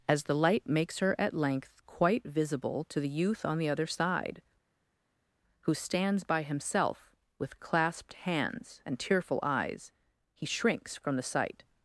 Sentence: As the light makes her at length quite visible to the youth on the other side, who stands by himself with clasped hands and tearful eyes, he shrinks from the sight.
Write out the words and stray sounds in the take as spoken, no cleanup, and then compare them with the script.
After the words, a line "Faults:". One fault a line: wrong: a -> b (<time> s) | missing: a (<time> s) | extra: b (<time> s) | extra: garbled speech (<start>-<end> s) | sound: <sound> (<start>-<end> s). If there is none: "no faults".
As the light makes her at length quite visible to the youth on the other side, who stands by himself with clasped hands and tearful eyes, he shrinks from the sight.
Faults:
no faults